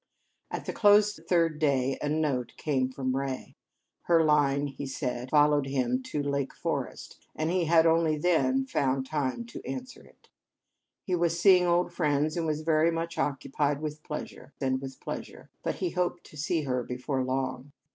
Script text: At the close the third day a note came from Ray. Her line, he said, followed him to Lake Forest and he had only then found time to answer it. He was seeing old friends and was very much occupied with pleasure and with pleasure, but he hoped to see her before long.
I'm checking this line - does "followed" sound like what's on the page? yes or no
yes